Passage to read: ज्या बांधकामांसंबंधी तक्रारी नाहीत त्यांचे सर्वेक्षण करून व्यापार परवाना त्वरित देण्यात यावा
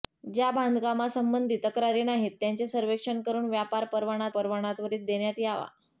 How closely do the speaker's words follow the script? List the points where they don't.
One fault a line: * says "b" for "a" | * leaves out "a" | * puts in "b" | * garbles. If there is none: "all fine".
* puts in "परवाना"